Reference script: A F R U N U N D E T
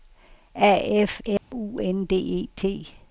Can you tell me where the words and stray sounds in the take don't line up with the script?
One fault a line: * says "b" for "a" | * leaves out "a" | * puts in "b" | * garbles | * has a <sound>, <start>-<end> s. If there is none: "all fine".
* has a dropout, 1.4-1.5 s
* leaves out "U N"